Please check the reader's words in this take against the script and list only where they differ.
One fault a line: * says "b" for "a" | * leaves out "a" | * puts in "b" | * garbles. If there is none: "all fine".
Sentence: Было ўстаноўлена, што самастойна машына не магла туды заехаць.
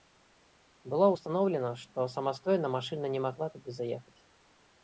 all fine